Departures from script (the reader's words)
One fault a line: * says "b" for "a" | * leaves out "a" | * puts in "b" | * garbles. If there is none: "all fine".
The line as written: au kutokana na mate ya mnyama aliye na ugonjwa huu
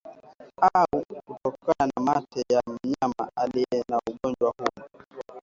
all fine